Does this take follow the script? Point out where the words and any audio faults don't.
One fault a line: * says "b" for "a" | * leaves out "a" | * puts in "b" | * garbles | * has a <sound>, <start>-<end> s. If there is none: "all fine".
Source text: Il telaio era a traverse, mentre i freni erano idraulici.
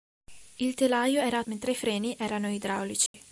* leaves out "traverse"
* has a dropout, 3.1-3.1 s